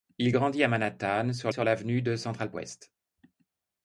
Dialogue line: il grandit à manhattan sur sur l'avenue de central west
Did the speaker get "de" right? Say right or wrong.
right